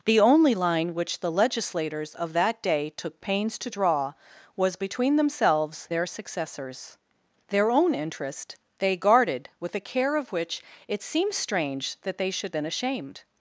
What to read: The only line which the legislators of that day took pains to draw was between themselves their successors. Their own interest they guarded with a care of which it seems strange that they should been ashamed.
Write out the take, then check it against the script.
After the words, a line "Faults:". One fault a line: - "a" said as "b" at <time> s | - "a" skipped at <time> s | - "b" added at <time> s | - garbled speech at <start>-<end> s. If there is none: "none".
The only line which the legislators of that day took pains to draw was between themselves their successors. Their own interest they guarded with a care of which it seems strange that they should been ashamed.
Faults:
none